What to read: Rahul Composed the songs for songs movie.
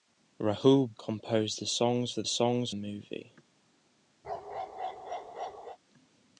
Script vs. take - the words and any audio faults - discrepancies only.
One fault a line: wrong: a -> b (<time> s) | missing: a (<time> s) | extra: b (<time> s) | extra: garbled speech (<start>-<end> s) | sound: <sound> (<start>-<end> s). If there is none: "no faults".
sound: bark (4.2-5.8 s)